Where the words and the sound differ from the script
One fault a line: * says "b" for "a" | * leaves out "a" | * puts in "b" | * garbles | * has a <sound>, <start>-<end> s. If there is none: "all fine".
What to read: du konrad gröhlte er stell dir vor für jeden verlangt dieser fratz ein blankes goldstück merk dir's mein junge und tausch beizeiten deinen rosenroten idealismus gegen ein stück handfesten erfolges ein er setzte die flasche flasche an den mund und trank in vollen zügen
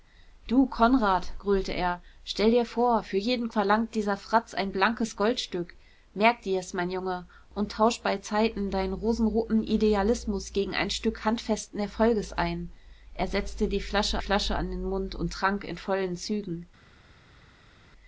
all fine